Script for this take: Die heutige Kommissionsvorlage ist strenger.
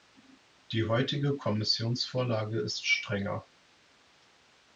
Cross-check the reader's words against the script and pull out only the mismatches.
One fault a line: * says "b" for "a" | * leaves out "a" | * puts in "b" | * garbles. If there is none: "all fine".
all fine